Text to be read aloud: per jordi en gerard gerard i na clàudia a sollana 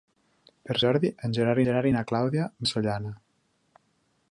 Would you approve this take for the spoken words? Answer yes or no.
yes